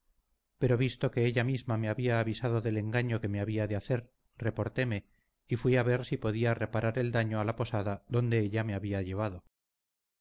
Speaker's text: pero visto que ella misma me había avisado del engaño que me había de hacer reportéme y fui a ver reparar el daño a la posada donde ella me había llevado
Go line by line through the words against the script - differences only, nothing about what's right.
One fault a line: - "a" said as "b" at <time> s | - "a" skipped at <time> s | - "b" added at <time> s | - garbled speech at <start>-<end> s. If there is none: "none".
- "si podía" added at 6.0 s